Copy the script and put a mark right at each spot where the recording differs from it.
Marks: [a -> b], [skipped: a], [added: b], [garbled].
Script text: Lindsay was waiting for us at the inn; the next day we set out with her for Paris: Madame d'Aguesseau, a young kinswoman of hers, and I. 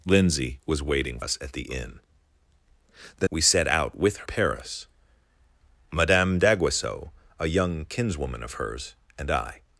Lindsay was waiting [skipped: for] us at the inn; the [skipped: next day] we set out with [skipped: her for] Paris: Madame d'Aguesseau, a young kinswoman of hers, and I.